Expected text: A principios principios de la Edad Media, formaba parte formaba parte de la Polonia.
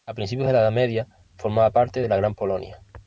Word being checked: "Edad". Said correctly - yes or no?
yes